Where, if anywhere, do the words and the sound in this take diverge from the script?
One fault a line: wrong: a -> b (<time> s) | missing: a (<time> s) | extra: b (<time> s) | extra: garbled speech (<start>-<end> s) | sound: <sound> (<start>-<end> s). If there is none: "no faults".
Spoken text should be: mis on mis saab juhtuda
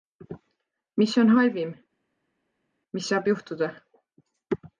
extra: halvim (1.4 s)